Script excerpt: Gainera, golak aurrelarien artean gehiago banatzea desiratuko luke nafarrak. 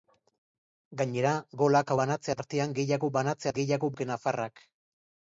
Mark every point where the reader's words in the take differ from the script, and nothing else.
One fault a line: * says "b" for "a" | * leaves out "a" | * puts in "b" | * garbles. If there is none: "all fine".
* says "banatzea" for "aurrelarien"
* says "gehiago" for "desiratuko"